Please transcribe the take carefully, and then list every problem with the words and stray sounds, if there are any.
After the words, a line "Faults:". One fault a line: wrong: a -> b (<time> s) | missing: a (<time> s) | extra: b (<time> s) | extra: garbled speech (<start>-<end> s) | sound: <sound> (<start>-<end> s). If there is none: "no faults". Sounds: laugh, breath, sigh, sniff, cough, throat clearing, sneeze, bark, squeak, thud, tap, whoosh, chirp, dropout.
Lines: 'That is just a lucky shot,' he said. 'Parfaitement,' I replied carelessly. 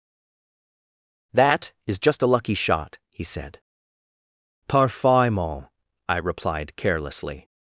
'That is just a lucky shot,' he said. 'Parfaitement,' I replied carelessly.
Faults:
no faults